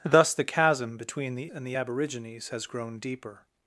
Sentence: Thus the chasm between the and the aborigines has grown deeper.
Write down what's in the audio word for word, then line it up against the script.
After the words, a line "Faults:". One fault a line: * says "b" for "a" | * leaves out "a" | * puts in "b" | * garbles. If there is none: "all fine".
Thus the chasm between the and the aborigines has grown deeper.
Faults:
all fine